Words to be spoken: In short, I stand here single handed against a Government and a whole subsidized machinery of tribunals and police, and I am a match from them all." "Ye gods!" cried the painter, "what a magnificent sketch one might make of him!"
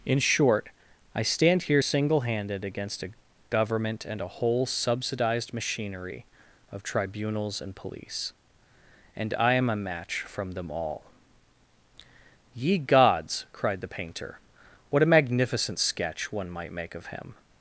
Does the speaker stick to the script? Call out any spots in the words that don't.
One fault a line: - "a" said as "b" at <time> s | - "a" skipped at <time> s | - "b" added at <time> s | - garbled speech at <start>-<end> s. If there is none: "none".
none